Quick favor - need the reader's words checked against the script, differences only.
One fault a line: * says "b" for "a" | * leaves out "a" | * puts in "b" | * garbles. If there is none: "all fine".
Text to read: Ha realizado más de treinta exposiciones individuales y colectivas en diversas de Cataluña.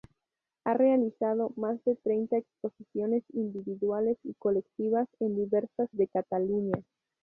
all fine